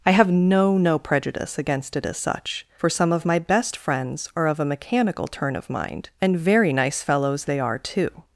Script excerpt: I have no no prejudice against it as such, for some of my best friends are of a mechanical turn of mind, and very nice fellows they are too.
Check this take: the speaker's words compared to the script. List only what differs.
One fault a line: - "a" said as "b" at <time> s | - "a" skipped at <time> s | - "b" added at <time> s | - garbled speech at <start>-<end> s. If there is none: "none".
none